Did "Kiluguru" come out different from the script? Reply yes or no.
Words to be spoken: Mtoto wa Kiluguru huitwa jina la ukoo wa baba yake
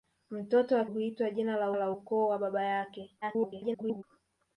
yes